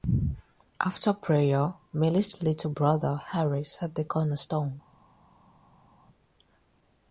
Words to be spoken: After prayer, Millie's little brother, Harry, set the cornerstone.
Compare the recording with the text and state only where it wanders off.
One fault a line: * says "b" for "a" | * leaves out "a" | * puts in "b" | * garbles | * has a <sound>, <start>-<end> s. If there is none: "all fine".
all fine